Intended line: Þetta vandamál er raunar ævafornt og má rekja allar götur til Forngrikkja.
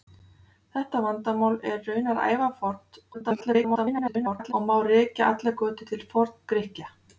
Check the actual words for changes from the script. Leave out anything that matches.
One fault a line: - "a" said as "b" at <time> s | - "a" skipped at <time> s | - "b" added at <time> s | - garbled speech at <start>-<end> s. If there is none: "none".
- garbled speech at 3.1-4.5 s